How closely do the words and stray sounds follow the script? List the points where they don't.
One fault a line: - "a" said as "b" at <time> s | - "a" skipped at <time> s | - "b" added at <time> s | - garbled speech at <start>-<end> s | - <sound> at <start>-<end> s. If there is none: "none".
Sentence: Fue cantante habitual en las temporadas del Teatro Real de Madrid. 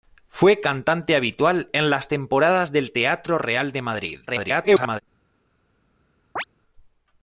- garbled speech at 4.3-5.0 s
- chirp at 6.4-6.4 s